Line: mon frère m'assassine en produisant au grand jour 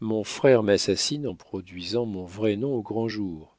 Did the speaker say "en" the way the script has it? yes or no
yes